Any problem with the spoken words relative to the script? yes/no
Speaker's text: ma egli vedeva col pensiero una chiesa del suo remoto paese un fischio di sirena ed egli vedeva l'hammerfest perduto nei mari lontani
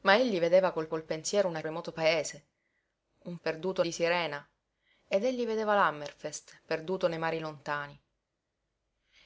yes